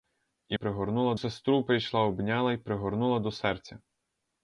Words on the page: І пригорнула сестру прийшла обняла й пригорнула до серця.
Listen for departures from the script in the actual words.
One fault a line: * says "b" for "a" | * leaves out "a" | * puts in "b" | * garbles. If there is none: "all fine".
all fine